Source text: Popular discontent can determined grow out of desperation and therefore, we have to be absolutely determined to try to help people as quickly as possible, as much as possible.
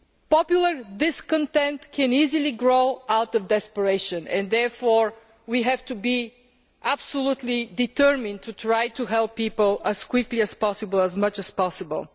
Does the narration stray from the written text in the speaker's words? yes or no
yes